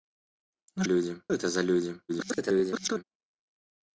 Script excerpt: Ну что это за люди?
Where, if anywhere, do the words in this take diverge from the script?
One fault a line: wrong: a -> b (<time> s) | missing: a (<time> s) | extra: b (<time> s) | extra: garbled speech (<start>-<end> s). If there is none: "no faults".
wrong: что -> люди (0.8 s)
extra: garbled speech (2.1-3.0 s)